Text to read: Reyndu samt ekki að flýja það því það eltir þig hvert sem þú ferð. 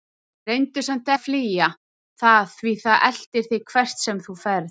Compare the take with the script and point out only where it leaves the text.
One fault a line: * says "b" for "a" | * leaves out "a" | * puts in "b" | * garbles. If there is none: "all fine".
* leaves out "ekki"